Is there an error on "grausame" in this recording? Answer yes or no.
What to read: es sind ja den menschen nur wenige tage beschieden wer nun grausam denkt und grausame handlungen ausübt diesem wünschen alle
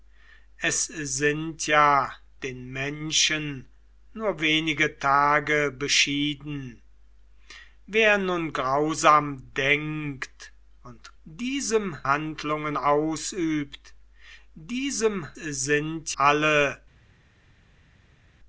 yes